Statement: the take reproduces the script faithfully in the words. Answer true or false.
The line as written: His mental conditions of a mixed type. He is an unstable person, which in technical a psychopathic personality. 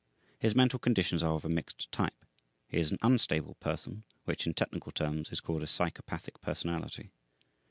false